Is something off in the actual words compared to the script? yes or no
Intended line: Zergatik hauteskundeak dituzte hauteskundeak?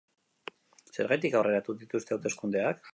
yes